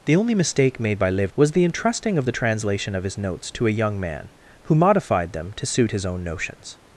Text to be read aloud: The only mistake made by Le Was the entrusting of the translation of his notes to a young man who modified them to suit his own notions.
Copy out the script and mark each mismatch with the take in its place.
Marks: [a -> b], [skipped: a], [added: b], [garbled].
The only mistake made by Le Was the entrusting of the translation of his notes to a young man who modified them to suit his own notions.